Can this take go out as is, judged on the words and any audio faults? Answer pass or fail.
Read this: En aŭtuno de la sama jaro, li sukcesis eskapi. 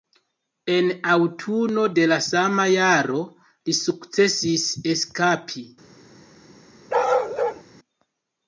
fail